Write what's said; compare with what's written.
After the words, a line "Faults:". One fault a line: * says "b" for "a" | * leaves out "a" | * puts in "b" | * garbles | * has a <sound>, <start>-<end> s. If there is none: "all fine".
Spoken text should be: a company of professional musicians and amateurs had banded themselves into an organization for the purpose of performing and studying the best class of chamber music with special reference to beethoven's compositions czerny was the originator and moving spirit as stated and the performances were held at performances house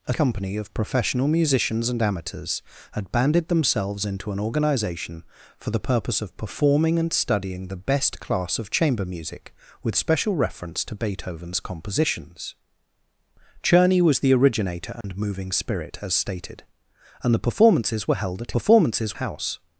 a company of professional musicians and amateurs had banded themselves into an organization for the purpose of performing and studying the best class of chamber music with special reference to beethoven's compositions czerny was the originator and moving spirit as stated and the performances were held at performances house
Faults:
* has a dropout, 15.0-15.0 s